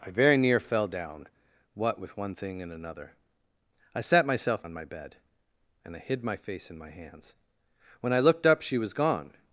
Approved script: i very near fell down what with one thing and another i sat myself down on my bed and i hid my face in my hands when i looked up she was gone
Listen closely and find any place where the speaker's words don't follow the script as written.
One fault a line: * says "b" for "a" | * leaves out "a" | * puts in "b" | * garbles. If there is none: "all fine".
* leaves out "down"